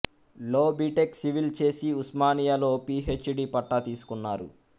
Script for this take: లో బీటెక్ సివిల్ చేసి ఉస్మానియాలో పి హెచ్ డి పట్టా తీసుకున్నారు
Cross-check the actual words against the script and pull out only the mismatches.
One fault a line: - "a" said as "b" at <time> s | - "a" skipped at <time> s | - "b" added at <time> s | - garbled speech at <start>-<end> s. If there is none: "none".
none